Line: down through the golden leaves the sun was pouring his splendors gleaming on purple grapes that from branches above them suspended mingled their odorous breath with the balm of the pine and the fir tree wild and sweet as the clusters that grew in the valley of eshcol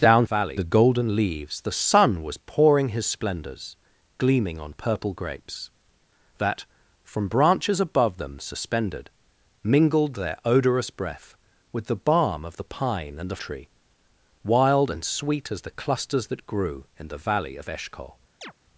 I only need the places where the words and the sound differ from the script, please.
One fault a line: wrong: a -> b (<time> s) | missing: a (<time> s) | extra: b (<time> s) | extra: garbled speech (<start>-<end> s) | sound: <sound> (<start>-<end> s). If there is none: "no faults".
wrong: through -> valley (0.2 s)
missing: fir (13.4 s)
sound: chirp (18.4-18.5 s)